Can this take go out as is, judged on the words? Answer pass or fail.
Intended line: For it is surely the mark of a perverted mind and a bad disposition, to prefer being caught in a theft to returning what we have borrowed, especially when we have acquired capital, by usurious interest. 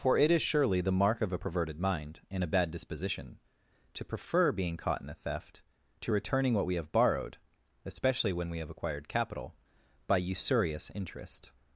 pass